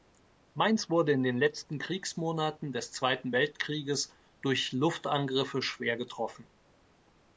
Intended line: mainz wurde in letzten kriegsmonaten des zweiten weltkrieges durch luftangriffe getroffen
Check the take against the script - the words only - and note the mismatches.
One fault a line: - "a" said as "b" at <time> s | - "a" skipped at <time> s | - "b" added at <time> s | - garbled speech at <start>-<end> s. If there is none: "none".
- "den" added at 1.2 s
- "schwer" added at 5.6 s